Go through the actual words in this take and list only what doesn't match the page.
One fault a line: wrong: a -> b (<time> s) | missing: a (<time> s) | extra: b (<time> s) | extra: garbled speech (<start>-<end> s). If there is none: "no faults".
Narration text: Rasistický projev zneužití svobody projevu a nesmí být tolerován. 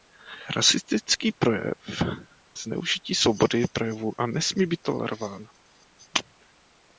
no faults